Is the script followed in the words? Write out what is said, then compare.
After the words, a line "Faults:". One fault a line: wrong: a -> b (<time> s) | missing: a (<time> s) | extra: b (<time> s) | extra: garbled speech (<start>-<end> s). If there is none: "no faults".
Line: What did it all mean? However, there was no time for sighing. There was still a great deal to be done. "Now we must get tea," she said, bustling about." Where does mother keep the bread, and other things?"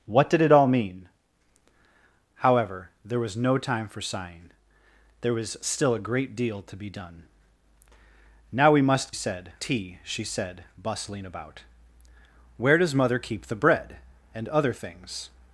What did it all mean? However, there was no time for sighing. There was still a great deal to be done. "Now we must said tea," she said, bustling about." Where does mother keep the bread, and other things?"
Faults:
wrong: get -> said (9.1 s)